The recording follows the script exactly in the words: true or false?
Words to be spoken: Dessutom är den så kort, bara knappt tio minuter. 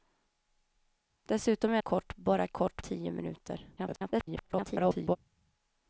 false